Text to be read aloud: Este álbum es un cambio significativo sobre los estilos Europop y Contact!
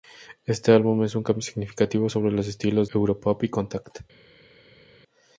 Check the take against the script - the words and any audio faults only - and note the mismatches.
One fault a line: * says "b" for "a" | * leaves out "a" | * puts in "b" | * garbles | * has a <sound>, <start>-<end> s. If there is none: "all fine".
all fine